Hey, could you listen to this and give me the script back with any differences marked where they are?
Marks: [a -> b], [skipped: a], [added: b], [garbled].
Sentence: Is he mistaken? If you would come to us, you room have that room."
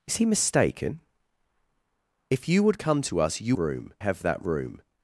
Is he mistaken? If you would come to us, you room have that room."